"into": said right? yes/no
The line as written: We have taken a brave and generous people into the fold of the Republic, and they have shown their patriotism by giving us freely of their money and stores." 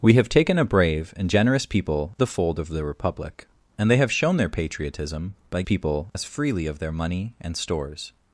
no